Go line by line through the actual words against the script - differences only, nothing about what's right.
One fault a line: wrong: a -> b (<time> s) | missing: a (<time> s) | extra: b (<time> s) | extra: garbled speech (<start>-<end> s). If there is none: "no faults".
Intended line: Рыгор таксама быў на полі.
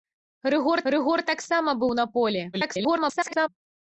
extra: рыгор (0.9 s)
extra: garbled speech (2.5-3.5 s)